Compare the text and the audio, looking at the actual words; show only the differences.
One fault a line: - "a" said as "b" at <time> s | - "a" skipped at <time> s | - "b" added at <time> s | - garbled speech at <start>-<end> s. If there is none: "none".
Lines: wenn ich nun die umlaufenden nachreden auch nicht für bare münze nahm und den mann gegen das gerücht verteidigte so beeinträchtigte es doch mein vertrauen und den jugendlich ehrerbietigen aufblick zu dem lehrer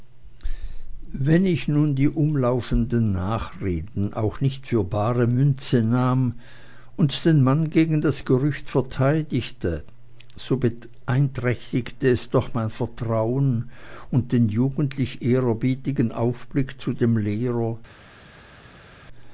none